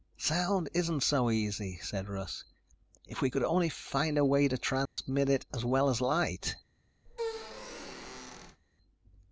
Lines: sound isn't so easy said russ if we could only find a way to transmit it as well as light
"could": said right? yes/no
yes